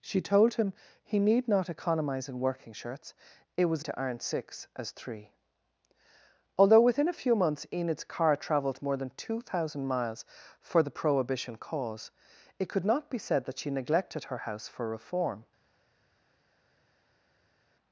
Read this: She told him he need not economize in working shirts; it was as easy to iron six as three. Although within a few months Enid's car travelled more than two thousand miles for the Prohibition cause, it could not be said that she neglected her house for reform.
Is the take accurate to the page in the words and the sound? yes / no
no